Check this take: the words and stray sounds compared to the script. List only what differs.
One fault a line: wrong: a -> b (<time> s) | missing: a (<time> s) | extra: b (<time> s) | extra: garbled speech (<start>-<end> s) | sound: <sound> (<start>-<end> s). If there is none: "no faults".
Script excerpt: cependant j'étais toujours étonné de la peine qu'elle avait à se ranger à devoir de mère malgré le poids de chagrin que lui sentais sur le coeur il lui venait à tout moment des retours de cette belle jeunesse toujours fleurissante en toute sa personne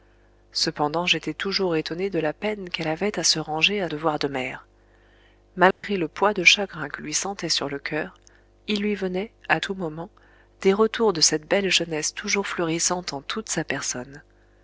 sound: dropout (5.7-5.8 s)